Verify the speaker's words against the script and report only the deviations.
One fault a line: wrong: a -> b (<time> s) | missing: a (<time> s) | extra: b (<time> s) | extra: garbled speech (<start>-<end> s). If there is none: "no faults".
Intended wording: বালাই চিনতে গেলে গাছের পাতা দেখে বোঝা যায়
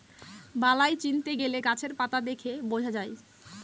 no faults